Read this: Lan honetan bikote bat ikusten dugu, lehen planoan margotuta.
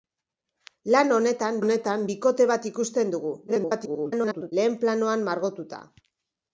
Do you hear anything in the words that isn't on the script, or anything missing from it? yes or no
yes